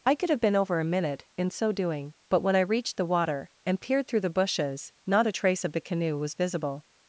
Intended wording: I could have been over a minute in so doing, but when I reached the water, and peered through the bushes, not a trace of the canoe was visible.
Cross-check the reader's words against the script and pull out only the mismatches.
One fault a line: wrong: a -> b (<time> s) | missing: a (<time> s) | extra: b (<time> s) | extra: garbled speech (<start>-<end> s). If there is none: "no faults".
no faults